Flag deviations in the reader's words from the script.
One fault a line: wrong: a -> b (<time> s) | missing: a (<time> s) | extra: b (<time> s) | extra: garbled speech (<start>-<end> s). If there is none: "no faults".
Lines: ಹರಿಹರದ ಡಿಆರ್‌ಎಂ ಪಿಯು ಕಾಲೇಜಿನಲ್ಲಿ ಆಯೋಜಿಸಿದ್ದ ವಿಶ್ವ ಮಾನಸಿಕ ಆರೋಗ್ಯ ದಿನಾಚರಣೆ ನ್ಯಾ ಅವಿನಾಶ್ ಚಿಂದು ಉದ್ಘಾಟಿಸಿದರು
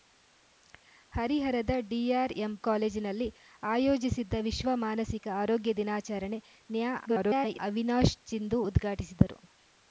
missing: ಪಿಯು (2.5 s)
extra: garbled speech (7.1-7.6 s)